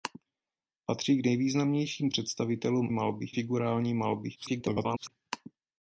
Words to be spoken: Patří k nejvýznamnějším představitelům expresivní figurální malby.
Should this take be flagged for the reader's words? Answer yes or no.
yes